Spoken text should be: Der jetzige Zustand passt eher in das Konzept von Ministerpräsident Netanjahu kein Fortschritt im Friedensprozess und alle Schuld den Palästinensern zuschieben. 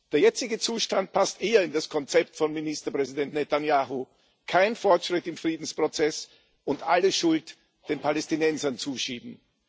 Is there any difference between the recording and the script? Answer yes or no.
no